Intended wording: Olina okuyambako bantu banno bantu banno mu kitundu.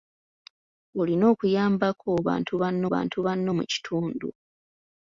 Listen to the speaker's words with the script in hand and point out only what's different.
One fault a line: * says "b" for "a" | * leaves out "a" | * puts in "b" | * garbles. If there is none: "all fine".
all fine